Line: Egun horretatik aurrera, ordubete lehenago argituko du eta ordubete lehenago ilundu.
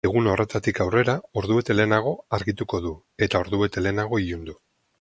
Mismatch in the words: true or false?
false